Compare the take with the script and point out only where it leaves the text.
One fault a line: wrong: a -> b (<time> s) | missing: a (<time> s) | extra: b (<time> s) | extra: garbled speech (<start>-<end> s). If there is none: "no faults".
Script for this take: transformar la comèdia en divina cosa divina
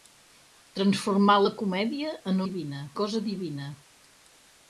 no faults